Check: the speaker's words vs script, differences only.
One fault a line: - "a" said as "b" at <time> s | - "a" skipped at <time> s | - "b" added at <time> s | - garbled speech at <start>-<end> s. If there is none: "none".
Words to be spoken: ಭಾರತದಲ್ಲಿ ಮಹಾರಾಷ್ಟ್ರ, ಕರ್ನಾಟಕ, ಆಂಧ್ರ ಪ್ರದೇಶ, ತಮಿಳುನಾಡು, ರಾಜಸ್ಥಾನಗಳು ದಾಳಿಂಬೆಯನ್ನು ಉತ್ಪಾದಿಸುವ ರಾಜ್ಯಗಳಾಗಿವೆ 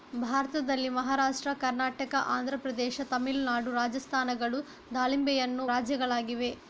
- "ಉತ್ಪಾದಿಸುವ" skipped at 5.7 s